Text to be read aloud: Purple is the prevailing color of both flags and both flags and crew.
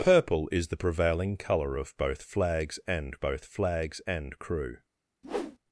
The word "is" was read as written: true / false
true